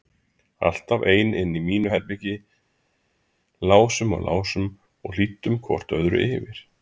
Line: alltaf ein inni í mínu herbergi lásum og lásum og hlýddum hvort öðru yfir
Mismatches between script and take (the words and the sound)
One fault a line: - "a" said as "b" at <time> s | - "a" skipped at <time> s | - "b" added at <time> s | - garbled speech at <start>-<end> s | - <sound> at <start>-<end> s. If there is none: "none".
none